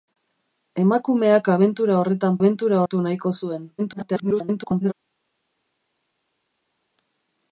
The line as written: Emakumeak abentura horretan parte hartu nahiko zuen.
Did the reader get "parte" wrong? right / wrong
wrong